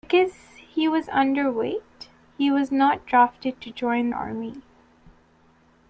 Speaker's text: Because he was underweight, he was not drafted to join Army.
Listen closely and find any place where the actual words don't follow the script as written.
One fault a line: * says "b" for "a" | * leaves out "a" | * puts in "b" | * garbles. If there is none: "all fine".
all fine